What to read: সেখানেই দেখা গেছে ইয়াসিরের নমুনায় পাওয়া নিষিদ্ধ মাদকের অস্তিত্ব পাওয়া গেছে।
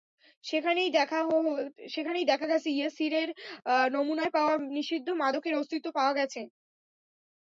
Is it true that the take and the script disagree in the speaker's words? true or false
false